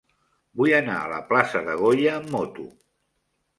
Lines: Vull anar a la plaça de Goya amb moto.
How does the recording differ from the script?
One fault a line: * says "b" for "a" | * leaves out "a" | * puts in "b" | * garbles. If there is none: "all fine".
all fine